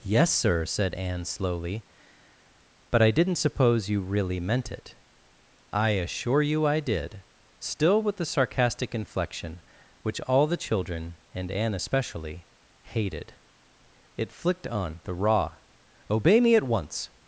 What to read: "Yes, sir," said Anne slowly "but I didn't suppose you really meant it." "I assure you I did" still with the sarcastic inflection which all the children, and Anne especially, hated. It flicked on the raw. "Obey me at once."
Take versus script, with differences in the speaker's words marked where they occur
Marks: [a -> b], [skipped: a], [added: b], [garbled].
"Yes, sir," said Anne slowly "but I didn't suppose you really meant it." "I assure you I did" still with the sarcastic inflection which all the children, and Anne especially, hated. It flicked on the raw. "Obey me at once."